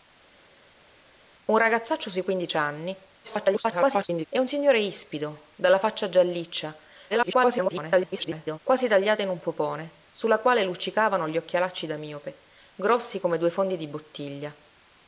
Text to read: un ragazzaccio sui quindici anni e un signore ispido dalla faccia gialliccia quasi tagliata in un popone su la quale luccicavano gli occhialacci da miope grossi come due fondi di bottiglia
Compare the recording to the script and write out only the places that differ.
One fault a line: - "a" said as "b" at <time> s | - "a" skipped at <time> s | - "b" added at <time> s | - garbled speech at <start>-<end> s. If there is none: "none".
- garbled speech at 3.2-4.3 s
- garbled speech at 7.1-8.6 s